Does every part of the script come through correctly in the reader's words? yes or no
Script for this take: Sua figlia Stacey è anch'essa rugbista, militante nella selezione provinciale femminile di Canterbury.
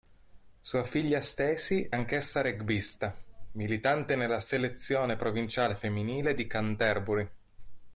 no